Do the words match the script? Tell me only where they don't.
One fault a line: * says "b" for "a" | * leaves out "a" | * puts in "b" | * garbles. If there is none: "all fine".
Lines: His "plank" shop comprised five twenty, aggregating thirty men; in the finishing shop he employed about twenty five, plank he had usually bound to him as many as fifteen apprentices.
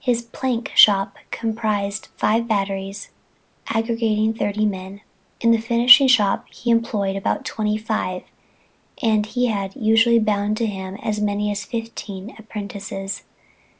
* says "batteries" for "twenty"
* says "and" for "plank"